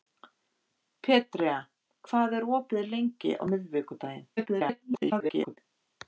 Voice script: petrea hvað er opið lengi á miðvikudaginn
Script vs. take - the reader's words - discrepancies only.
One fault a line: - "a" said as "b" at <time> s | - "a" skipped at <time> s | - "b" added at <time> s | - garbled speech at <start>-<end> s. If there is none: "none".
- garbled speech at 4.4-5.6 s